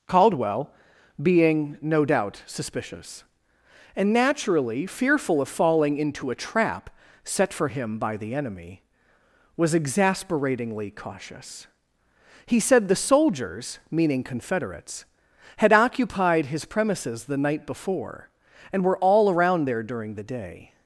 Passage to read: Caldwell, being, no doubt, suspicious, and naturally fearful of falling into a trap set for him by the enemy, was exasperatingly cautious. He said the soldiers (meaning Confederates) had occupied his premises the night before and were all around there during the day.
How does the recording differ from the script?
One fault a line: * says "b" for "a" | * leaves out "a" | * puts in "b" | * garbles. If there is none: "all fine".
all fine